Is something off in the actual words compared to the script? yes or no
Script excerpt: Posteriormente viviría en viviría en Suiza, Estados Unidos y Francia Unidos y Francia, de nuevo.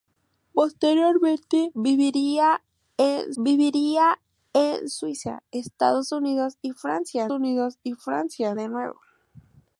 no